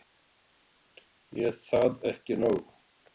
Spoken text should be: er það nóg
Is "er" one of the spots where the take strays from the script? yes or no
no